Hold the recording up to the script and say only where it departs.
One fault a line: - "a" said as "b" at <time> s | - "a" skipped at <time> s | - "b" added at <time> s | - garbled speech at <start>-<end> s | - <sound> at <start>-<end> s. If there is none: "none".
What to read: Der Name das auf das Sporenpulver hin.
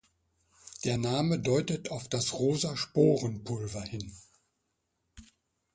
- "das" said as "deutet" at 1.4 s
- "rosa" added at 2.3 s